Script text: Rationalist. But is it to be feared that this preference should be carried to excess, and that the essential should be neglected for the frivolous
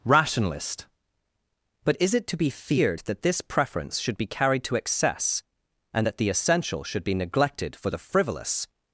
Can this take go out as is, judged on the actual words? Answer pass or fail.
pass